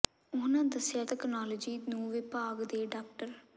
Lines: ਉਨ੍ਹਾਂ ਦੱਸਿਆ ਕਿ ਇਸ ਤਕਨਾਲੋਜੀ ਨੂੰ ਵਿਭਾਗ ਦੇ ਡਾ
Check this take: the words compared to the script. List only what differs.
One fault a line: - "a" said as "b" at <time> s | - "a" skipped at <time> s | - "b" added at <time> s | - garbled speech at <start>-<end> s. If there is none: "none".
- "ਕਿ ਇਸ" skipped at 1.0 s